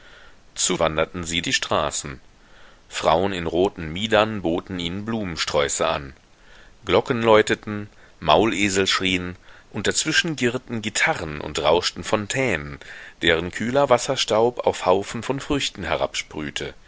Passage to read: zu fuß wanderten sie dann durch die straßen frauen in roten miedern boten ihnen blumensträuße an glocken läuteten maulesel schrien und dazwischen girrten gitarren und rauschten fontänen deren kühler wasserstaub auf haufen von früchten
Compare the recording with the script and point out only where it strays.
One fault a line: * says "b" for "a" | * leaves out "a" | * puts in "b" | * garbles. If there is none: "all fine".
* leaves out "fuß"
* leaves out "dann durch"